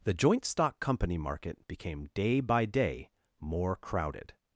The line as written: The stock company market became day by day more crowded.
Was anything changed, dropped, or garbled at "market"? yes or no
no